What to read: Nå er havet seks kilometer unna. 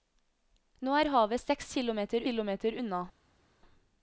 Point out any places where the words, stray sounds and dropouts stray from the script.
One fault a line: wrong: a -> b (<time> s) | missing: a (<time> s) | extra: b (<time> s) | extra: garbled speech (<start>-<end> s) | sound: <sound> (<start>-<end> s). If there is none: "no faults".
extra: kilometer (2.3 s)